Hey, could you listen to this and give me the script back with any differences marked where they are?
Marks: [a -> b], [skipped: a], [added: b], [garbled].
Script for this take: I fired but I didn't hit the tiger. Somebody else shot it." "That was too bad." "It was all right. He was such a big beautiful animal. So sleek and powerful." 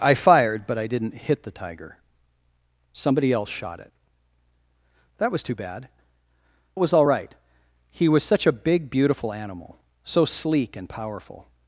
I fired but I didn't hit the tiger. Somebody else shot it." "That was too bad." "It was all right. He was such a big beautiful animal. So sleek and powerful."